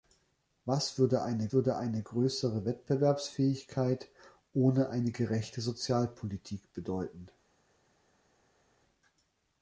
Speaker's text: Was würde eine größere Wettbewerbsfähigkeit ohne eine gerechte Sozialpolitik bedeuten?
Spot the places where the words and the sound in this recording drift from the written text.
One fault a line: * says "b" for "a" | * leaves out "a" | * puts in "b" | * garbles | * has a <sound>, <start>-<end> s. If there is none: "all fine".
* puts in "würde eine"